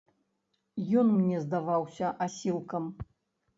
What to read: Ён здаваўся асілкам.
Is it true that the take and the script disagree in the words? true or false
true